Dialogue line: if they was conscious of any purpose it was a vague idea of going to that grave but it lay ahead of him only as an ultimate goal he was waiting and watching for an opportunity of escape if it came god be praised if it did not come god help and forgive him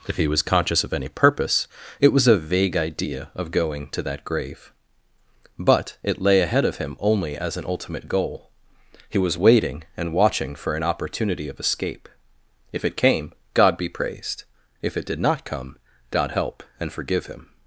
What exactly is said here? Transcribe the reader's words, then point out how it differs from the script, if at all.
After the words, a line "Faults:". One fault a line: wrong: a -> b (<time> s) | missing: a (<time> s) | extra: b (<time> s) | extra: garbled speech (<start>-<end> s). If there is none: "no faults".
if he was conscious of any purpose it was a vague idea of going to that grave but it lay ahead of him only as an ultimate goal he was waiting and watching for an opportunity of escape if it came god be praised if it did not come god help and forgive him
Faults:
wrong: they -> he (0.2 s)